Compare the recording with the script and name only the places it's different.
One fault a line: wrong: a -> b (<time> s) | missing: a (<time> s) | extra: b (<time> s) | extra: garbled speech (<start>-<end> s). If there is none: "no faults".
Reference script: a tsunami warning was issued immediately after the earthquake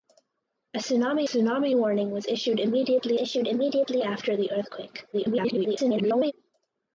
extra: tsunami (1.2 s)
extra: issued immediately (3.1 s)
extra: garbled speech (5.1-6.3 s)